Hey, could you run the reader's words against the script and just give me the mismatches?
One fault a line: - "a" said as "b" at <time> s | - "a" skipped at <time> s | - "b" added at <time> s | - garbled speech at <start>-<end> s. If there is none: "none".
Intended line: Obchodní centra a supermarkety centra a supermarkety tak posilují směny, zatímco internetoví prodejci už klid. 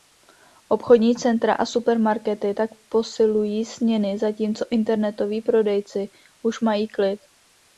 - "centra a supermarkety" skipped at 2.5 s
- "mají" added at 6.6 s